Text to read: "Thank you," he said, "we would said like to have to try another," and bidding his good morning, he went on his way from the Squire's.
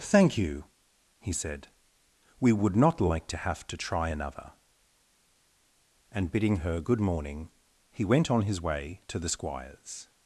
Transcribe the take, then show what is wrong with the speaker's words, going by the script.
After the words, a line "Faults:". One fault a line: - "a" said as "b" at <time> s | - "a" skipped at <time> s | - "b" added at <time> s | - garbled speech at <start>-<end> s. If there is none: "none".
"Thank you," he said, "we would not like to have to try another," and bidding her good morning, he went on his way to the Squire's.
Faults:
- "said" said as "not" at 2.8 s
- "his" said as "her" at 6.6 s
- "from" said as "to" at 9.1 s